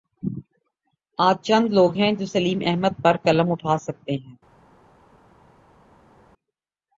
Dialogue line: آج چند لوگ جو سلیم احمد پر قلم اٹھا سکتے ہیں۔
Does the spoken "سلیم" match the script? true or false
true